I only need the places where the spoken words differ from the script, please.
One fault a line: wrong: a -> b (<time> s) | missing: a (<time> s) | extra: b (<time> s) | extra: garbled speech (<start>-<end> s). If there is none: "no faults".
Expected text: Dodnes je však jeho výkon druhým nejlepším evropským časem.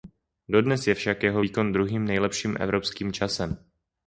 no faults